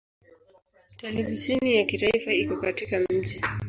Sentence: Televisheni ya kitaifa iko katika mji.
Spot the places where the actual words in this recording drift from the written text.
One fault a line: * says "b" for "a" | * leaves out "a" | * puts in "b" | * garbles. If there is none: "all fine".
all fine